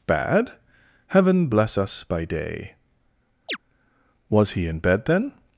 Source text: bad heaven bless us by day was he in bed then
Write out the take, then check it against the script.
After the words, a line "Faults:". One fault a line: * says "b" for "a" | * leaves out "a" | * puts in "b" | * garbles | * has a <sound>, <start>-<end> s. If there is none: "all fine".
bad heaven bless us by day was he in bed then
Faults:
* has a chirp, 3.5-3.6 s